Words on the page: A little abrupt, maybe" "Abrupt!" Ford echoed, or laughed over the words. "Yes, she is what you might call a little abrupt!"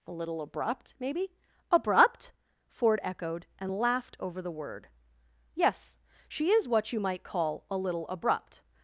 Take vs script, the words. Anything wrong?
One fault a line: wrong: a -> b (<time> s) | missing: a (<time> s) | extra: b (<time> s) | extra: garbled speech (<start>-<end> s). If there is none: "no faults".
wrong: or -> and (3.6 s)
wrong: words -> word (4.5 s)